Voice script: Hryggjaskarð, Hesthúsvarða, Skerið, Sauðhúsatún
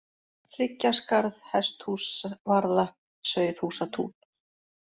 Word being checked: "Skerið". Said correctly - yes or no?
no